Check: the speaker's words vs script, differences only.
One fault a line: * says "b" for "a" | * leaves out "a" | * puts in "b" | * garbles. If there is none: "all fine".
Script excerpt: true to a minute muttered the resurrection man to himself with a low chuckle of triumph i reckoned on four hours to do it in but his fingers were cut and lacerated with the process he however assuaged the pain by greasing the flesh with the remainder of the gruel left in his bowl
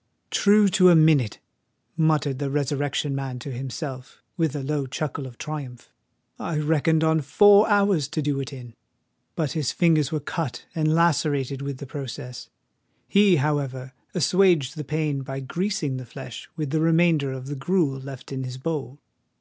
all fine